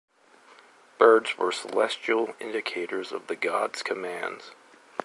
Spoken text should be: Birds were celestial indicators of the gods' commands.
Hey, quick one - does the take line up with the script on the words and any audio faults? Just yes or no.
yes